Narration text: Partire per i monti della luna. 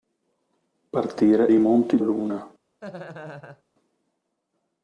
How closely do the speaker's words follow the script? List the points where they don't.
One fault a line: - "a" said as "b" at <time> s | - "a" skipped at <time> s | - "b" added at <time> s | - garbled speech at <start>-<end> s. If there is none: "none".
- "per" skipped at 1.5 s
- "della" skipped at 2.0 s